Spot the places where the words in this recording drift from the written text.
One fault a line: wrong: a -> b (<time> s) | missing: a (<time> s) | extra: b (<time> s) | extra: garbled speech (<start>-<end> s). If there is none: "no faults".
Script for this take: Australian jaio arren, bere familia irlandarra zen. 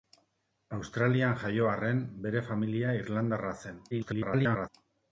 extra: garbled speech (3.9-4.7 s)